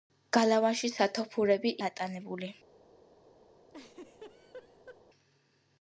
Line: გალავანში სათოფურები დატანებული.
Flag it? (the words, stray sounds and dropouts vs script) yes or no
yes